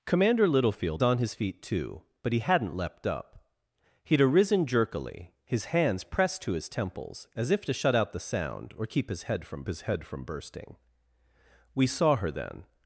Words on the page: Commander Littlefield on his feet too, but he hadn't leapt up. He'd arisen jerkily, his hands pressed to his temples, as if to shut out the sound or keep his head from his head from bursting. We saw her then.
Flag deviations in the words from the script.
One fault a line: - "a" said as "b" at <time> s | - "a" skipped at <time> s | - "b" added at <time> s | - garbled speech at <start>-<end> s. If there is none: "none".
none